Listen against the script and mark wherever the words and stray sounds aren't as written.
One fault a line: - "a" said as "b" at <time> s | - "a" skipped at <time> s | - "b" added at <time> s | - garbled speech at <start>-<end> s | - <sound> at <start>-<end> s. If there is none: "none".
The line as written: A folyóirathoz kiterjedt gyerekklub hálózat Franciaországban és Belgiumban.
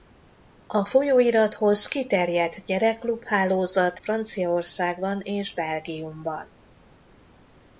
none